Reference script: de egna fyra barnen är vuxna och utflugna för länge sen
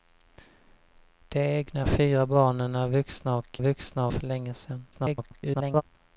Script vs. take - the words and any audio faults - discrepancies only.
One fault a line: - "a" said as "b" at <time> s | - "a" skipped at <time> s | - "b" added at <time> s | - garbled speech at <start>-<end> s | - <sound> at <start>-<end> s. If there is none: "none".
- "utflugna" said as "vuxna" at 3.6 s
- garbled speech at 4.9-5.8 s